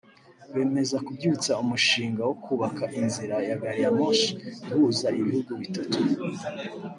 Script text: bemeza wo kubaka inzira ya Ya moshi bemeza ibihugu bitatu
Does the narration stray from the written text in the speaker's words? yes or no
yes